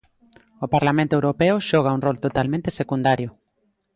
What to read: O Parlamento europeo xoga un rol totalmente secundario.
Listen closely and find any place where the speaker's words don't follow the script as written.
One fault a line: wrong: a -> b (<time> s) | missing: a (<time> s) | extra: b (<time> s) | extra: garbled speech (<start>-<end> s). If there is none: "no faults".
no faults